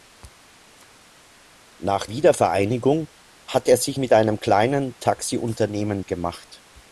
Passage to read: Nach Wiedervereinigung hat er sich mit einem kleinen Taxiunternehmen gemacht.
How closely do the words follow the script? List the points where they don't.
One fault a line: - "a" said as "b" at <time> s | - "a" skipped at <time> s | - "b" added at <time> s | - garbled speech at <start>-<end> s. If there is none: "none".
none